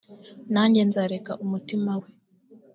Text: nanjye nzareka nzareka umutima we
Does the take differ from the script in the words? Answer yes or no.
yes